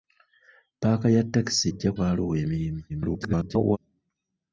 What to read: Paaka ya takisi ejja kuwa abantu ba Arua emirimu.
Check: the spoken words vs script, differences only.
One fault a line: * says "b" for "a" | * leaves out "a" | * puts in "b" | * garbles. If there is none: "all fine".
* leaves out "kuwa abantu"
* garbles